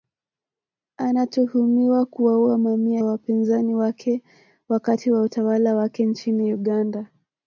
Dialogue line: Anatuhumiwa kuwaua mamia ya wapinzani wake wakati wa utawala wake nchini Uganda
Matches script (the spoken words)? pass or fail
fail